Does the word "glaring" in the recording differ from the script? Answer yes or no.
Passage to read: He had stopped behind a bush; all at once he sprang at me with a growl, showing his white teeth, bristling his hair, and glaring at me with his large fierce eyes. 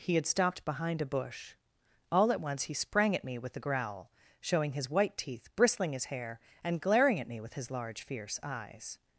no